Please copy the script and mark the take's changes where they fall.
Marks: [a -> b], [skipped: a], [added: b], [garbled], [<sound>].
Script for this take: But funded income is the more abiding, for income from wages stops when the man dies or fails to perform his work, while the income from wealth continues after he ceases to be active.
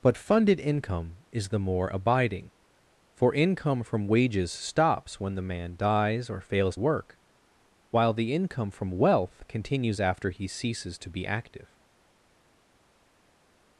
But funded income is the more abiding, for income from wages stops when the man dies or fails [skipped: to perform his] work, while the income from wealth continues after he ceases to be active.